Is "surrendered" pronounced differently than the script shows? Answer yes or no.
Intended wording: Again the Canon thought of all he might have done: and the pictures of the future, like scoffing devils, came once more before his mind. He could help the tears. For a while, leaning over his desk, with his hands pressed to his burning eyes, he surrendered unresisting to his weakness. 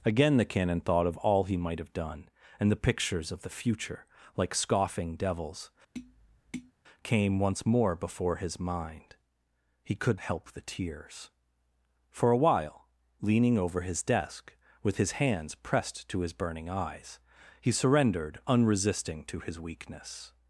no